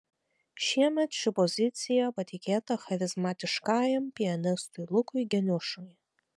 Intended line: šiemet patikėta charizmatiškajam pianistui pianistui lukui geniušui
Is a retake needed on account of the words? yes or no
yes